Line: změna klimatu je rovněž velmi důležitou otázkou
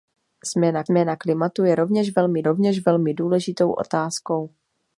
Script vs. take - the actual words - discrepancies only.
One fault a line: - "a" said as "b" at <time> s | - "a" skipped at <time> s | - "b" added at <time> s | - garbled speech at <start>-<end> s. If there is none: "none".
- "změna" added at 0.9 s
- "rovněž velmi" added at 2.4 s